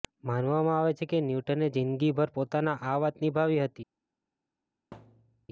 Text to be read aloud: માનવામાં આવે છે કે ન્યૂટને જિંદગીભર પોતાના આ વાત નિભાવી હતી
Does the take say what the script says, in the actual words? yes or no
yes